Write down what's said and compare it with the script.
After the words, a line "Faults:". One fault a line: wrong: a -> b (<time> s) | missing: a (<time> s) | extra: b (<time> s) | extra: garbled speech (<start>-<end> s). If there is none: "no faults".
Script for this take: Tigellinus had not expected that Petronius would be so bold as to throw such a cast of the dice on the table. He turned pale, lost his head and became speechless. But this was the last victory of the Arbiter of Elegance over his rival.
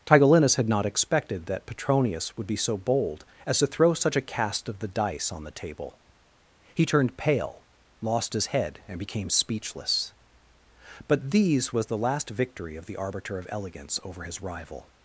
Tigellinus had not expected that Petronius would be so bold as to throw such a cast of the dice on the table. He turned pale, lost his head and became speechless. But these was the last victory of the Arbiter of Elegance over his rival.
Faults:
wrong: this -> these (11.3 s)